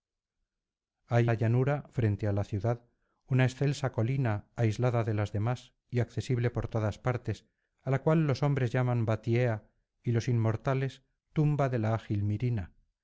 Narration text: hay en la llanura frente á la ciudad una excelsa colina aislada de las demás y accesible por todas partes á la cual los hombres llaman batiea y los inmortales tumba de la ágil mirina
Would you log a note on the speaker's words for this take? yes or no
yes